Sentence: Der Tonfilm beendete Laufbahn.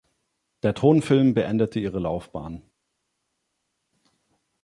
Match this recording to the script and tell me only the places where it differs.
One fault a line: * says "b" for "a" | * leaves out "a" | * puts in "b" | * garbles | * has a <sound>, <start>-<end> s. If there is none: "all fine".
* puts in "ihre"